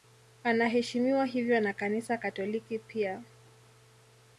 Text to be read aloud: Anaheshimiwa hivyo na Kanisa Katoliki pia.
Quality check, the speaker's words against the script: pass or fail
pass